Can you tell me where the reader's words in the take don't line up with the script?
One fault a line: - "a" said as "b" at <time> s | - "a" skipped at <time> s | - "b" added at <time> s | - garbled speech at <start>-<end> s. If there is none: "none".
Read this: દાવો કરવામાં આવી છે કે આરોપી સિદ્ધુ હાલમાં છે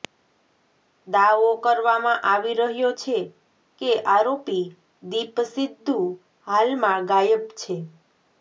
- "રહ્યો" added at 2.6 s
- "દીપ" added at 5.0 s
- "ગાયબ" added at 7.1 s